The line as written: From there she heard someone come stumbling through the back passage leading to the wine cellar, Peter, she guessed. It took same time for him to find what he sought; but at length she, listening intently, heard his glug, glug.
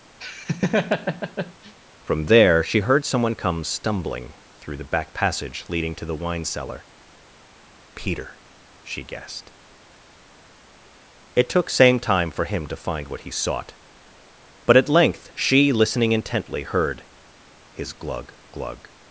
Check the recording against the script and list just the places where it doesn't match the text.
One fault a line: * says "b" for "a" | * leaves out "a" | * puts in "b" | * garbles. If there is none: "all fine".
all fine